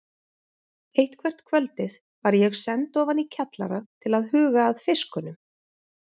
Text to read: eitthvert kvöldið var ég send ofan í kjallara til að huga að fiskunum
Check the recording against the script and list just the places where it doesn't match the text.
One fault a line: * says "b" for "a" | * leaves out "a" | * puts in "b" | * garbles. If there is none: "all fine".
all fine